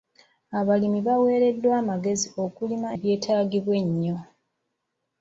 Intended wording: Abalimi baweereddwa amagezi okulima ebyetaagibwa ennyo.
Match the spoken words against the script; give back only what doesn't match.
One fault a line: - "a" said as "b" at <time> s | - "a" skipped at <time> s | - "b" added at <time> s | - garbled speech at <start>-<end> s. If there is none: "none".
none